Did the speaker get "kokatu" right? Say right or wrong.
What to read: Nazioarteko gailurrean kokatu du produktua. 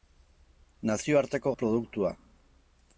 wrong